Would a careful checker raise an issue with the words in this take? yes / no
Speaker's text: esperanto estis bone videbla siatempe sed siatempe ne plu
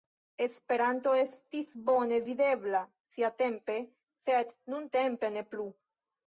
yes